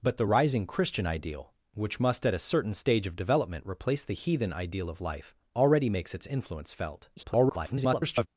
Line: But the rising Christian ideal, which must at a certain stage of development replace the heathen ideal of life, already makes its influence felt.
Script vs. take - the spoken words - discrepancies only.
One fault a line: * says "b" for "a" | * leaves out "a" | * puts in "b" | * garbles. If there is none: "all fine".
* garbles